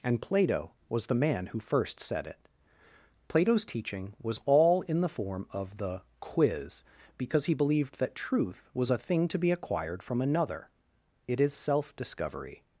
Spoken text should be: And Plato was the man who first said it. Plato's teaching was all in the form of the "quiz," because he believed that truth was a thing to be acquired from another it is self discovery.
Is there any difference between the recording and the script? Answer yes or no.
no